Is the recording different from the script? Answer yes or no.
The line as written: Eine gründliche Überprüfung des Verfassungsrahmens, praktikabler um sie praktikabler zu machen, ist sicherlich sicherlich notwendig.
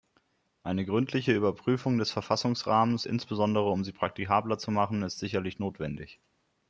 yes